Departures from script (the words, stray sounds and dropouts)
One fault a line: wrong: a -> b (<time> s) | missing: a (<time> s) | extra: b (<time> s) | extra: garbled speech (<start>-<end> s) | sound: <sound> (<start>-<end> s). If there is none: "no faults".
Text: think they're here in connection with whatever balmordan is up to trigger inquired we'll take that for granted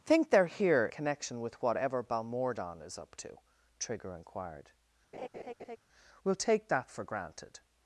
missing: in (0.9 s)
sound: laugh (5.1-5.8 s)